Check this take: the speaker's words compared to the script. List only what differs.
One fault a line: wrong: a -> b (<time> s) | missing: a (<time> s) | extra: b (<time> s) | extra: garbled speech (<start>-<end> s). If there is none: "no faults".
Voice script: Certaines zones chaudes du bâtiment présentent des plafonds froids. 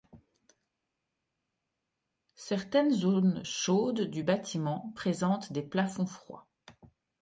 no faults